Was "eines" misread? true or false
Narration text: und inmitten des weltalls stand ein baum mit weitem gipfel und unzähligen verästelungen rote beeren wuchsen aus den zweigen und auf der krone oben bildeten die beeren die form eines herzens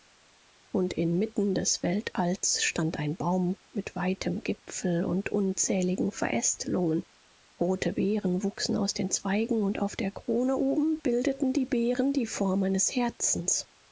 false